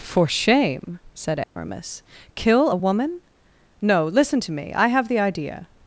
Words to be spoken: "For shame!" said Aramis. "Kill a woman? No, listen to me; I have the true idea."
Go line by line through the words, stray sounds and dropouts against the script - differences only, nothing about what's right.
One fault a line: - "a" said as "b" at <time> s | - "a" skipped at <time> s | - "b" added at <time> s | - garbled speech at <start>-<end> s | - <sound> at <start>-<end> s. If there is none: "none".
- dropout at 1.4-1.6 s
- "true" skipped at 5.2 s